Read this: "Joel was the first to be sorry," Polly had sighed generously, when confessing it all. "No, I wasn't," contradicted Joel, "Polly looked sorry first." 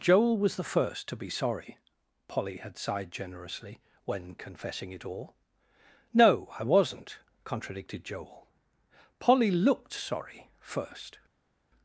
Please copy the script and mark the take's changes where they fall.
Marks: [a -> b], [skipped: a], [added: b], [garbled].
"Joel was the first to be sorry," Polly had sighed generously, when confessing it all. "No, I wasn't," contradicted Joel, "Polly looked sorry first."